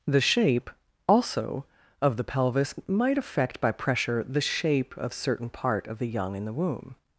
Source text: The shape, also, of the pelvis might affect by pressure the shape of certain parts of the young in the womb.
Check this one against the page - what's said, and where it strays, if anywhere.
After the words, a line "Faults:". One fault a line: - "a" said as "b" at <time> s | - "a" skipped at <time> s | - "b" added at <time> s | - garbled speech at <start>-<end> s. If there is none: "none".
The shape, also, of the pelvis might affect by pressure the shape of certain part of the young in the womb.
Faults:
- "parts" said as "part" at 5.5 s